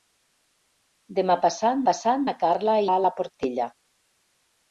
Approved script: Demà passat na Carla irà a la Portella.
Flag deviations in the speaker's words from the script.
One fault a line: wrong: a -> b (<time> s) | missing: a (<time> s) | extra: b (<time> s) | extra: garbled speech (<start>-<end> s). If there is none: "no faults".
extra: passat (1.9 s)
missing: irà (2.8 s)